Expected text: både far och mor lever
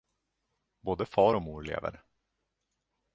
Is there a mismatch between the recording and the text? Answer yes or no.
no